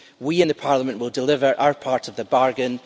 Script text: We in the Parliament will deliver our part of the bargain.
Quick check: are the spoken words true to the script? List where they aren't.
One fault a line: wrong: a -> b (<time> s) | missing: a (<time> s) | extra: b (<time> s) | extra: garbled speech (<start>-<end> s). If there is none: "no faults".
no faults